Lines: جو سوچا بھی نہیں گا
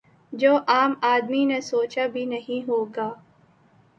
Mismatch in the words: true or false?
true